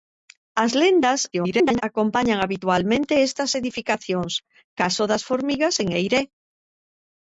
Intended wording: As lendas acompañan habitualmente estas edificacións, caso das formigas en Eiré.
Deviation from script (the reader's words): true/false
true